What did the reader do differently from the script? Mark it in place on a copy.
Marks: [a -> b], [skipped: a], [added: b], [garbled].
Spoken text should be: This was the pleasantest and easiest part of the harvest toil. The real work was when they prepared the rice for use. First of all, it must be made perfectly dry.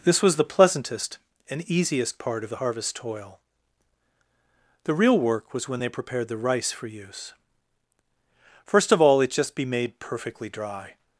This was the pleasantest and easiest part of the harvest toil. The real work was when they prepared the rice for use. First of all, it [must -> just] be made perfectly dry.